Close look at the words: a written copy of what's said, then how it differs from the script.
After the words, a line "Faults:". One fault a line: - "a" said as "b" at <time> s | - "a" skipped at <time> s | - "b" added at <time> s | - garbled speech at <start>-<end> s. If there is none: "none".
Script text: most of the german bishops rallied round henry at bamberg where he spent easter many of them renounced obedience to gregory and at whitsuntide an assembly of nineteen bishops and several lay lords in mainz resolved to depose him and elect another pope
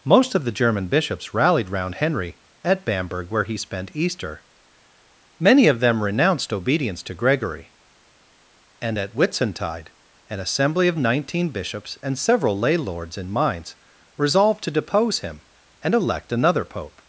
most of the german bishops rallied round henry at bamberg where he spent easter many of them renounced obedience to gregory and at whitsuntide an assembly of nineteen bishops and several lay lords in mainz resolved to depose him and elect another pope
Faults:
none